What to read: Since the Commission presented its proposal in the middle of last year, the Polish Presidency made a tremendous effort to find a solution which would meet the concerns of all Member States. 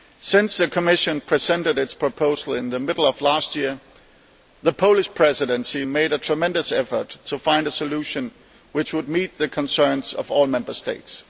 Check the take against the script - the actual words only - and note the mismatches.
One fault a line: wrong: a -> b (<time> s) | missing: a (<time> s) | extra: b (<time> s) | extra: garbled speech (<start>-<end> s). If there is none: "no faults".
no faults